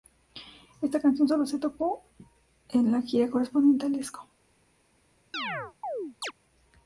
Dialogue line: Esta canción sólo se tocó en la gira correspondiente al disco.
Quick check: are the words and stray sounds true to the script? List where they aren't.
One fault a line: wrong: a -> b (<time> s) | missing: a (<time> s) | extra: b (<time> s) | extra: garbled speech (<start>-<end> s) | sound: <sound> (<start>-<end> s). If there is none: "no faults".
sound: chirp (5.3-6.3 s)